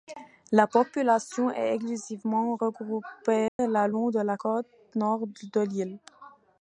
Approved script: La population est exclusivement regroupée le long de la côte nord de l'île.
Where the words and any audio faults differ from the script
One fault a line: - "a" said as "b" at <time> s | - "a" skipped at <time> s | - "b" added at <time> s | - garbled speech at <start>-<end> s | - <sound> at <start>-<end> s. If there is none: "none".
- dropout at 3.5-3.6 s